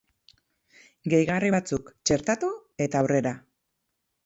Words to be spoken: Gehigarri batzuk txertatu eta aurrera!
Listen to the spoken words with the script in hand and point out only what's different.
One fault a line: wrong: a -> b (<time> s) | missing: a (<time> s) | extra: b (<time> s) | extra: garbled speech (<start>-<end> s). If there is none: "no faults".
no faults